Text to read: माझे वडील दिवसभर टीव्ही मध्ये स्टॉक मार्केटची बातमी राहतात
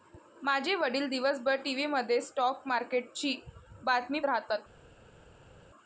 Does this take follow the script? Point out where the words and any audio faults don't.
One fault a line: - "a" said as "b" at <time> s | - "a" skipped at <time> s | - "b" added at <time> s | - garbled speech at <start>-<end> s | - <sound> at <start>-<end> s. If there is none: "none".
none